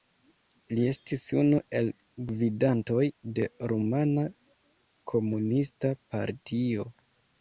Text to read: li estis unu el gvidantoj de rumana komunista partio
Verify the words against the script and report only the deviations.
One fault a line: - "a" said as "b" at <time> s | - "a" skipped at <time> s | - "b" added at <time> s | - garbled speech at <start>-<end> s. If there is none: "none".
none